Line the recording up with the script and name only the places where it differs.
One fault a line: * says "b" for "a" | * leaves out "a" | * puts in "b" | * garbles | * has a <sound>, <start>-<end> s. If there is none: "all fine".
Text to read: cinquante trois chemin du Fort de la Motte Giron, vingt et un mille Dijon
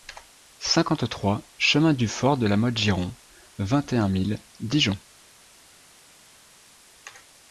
all fine